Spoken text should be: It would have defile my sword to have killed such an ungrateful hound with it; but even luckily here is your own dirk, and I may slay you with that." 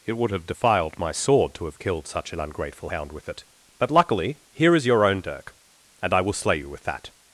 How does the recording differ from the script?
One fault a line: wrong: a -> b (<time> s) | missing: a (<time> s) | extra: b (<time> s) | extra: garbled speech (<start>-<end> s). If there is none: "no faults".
wrong: defile -> defiled (0.5 s)
missing: even (3.9 s)
wrong: may -> will (6.2 s)